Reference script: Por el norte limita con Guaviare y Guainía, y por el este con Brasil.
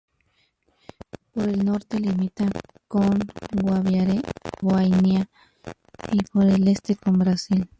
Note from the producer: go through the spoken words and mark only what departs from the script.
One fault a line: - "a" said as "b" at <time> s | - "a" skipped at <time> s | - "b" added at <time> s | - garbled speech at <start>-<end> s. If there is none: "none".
- "y" skipped at 4.2 s